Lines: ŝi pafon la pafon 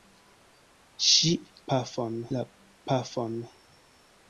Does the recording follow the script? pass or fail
pass